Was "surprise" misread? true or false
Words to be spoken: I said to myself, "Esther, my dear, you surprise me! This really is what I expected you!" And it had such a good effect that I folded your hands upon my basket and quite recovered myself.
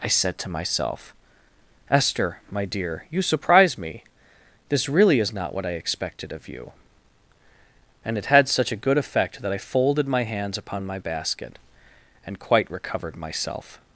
false